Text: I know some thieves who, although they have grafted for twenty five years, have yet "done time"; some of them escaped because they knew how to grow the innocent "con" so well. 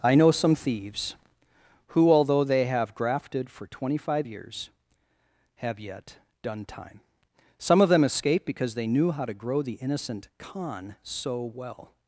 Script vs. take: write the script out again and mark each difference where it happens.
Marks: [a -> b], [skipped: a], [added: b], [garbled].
I know some thieves who, although they have grafted for twenty five years, have yet "done time"; some of them escaped because they knew how to grow the innocent "con" so well.